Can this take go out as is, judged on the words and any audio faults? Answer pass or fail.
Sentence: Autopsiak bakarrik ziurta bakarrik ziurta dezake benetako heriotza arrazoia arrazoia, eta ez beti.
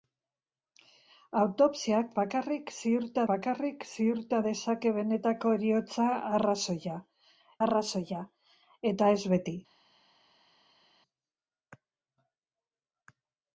pass